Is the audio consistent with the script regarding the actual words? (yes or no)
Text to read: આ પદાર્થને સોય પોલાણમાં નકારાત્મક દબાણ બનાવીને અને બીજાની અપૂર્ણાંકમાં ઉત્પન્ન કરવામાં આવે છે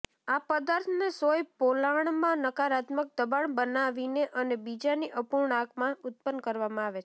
yes